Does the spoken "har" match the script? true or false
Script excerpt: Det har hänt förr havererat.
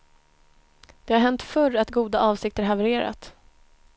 true